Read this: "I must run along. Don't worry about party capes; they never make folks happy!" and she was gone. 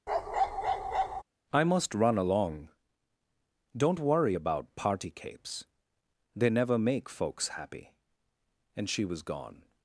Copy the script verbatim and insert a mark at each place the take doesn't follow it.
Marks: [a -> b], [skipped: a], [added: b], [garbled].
"I must run along. Don't worry about party capes; they never make folks happy!" and she was gone.